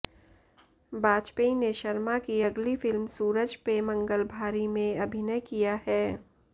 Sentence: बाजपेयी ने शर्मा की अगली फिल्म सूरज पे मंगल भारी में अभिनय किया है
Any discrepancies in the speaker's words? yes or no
no